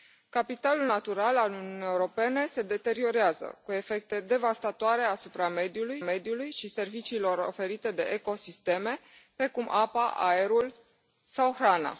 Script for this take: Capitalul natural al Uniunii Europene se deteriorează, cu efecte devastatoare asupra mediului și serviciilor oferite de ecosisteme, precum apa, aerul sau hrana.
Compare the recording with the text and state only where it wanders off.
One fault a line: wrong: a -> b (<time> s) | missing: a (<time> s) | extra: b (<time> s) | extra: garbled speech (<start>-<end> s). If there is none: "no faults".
extra: mediului (6.0 s)